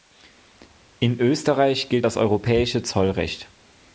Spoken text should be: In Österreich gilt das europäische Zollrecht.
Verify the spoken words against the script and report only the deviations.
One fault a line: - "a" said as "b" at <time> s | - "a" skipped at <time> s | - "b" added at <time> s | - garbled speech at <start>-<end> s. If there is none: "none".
none